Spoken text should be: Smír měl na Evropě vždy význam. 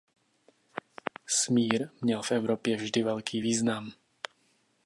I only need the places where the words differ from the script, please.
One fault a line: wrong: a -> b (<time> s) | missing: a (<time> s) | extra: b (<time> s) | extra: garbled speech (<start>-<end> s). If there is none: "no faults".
wrong: na -> v (2.2 s)
extra: velký (3.0 s)